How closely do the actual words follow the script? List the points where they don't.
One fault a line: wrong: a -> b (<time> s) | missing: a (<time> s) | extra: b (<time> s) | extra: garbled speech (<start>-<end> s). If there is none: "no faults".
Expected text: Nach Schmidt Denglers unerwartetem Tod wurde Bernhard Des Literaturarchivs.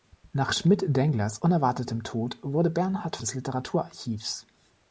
no faults